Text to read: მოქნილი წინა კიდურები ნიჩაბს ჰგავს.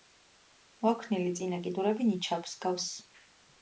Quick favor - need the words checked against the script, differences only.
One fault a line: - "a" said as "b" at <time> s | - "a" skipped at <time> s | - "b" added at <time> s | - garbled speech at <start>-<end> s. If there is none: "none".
none